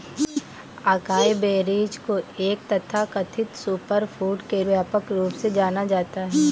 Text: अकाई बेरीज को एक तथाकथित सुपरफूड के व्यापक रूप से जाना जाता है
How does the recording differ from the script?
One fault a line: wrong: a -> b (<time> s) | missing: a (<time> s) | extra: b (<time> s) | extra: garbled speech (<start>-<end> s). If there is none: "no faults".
no faults